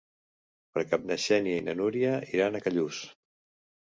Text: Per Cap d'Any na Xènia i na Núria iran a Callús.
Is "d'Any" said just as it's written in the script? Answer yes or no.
no